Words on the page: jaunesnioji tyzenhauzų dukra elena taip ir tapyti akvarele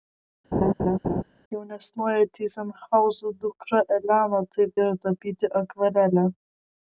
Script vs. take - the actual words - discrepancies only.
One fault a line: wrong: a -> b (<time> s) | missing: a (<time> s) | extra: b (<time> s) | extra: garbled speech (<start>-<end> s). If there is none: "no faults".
no faults